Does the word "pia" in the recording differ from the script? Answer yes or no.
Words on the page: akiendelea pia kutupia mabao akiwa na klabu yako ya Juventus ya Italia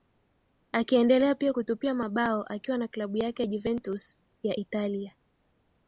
no